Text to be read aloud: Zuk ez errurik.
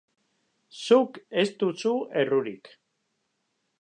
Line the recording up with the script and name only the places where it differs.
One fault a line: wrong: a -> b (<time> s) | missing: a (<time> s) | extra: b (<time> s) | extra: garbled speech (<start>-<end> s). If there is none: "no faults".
extra: duzu (1.6 s)